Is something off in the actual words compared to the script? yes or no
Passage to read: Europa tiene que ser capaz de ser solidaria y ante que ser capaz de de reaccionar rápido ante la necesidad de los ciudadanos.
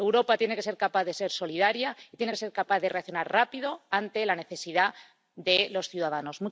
yes